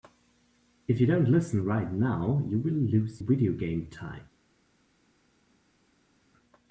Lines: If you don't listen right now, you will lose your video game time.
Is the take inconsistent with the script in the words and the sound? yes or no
yes